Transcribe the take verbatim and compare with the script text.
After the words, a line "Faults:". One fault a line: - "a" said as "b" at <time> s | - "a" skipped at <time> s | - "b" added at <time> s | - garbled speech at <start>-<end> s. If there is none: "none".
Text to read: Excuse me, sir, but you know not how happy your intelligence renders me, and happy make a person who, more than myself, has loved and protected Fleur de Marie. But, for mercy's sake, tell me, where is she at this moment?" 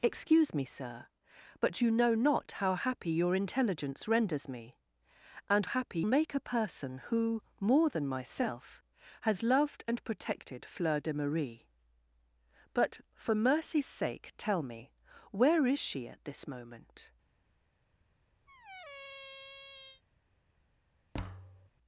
Excuse me, sir, but you know not how happy your intelligence renders me, and happy make a person who, more than myself, has loved and protected Fleur de Marie. But, for mercy's sake, tell me, where is she at this moment?"
Faults:
none